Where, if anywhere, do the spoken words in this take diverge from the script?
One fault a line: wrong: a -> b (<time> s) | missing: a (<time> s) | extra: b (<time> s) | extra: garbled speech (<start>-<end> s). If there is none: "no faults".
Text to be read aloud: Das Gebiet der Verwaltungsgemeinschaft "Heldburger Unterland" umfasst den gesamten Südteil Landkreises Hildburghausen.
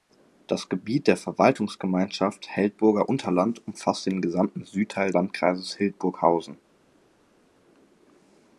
no faults